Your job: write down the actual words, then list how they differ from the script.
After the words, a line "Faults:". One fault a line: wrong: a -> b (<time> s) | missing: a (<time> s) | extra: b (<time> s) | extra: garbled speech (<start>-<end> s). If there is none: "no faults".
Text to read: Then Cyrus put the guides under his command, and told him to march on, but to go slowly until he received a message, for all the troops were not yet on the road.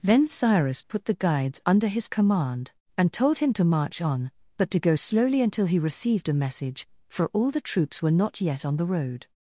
Then Cyrus put the guides under his command, and told him to march on, but to go slowly until he received a message, for all the troops were not yet on the road.
Faults:
no faults